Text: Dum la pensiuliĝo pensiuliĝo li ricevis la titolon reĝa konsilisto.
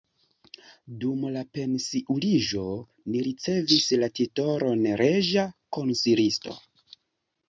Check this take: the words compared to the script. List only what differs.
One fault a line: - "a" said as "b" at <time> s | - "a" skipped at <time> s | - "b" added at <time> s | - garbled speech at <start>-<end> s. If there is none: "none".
- "pensiuliĝo" skipped at 2.6 s